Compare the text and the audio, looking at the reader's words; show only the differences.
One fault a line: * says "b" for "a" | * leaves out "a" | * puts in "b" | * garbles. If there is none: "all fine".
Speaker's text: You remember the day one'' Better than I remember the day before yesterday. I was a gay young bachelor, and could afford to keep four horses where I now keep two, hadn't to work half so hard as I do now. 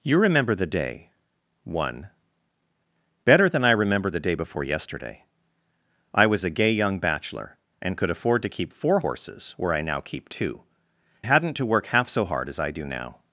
all fine